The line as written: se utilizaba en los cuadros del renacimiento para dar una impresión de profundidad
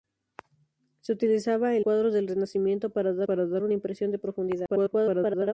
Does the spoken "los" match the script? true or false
false